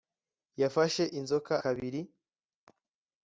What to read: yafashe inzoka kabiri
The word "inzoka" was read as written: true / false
true